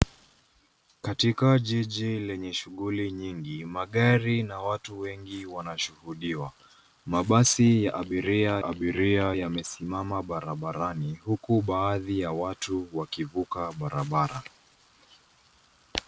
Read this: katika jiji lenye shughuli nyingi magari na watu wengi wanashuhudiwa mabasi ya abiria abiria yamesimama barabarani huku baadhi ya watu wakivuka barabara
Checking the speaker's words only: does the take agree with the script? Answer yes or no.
yes